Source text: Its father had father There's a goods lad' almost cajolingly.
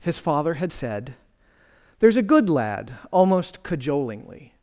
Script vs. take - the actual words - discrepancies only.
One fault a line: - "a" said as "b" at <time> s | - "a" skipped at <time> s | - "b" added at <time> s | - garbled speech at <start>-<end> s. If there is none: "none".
- "Its" said as "His" at 0.0 s
- "father" said as "said" at 0.7 s
- "goods" said as "good" at 2.2 s